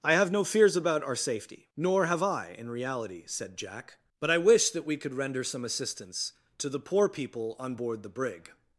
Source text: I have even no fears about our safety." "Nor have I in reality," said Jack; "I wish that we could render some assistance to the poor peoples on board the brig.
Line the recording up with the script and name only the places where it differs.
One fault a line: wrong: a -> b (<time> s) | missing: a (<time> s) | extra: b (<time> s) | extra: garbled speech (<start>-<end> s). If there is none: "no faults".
missing: even (0.3 s)
extra: but (4.2 s)
wrong: peoples -> people (7.1 s)